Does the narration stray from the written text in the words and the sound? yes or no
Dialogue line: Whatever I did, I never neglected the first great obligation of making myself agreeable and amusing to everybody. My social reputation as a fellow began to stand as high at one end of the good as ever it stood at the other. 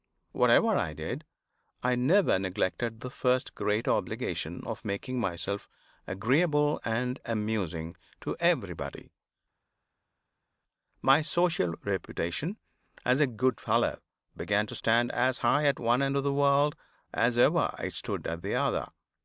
yes